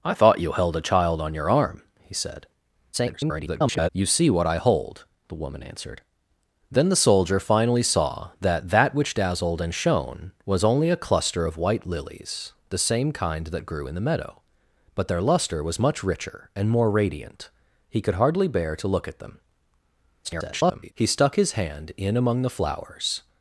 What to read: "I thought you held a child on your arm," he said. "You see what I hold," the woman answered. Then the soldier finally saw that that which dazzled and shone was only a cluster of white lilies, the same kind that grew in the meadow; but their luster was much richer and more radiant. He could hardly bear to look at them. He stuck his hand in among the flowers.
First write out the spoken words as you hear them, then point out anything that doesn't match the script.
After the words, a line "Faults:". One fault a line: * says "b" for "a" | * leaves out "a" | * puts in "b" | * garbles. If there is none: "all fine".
"I thought you held a child on your arm," he said. [garbled] "You see what I hold," the woman answered. Then the soldier finally saw that that which dazzled and shone was only a cluster of white lilies, the same kind that grew in the meadow; but their luster was much richer and more radiant. He could hardly bear to look at them. [garbled] He stuck his hand in among the flowers.
Faults:
* garbles
* garbles